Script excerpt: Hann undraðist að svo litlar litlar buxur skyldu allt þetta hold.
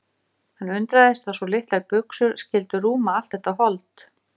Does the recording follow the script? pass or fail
fail